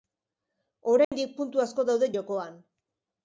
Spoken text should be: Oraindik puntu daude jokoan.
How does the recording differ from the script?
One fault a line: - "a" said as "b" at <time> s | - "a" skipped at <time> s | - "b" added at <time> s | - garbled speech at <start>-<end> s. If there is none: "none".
- "asko" added at 1.6 s